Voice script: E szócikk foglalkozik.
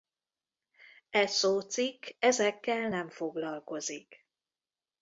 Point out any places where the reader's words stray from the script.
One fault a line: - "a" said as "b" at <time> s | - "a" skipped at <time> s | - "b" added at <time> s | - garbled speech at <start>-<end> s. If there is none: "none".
- "ezekkel nem" added at 2.2 s